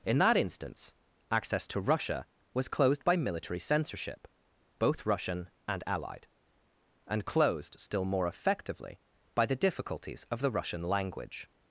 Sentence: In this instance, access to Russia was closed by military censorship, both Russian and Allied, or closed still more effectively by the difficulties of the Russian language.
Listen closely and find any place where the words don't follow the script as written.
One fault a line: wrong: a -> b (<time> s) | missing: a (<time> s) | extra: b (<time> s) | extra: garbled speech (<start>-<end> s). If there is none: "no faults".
wrong: this -> that (0.2 s)
wrong: or -> and (7.0 s)